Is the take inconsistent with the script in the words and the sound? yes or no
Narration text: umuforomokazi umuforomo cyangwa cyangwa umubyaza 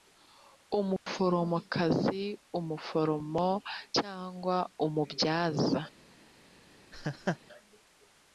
yes